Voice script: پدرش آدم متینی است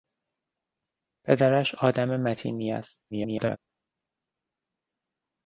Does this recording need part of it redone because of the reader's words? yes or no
yes